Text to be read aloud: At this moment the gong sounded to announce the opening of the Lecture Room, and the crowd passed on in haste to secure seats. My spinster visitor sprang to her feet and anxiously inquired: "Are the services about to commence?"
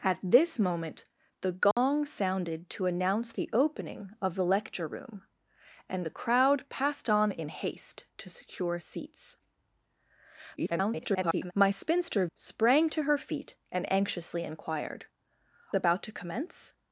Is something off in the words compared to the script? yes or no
yes